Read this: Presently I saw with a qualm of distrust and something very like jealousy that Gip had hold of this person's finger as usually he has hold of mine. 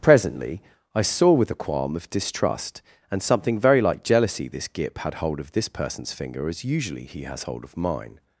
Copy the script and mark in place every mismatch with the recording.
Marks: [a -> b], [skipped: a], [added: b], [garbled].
Presently I saw with a qualm of distrust and something very like jealousy [that -> this] Gip had hold of this person's finger as usually he has hold of mine.